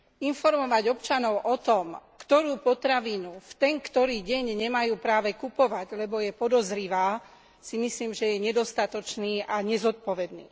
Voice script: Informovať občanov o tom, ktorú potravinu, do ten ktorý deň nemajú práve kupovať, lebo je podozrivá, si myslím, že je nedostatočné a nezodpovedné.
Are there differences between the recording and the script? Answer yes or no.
yes